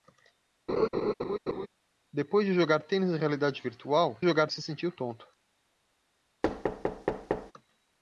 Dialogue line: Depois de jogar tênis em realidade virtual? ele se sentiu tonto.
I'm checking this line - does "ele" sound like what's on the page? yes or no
no